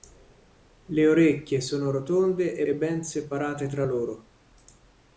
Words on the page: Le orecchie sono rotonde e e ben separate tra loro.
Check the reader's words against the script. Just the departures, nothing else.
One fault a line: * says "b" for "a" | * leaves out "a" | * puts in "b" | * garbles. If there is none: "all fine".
all fine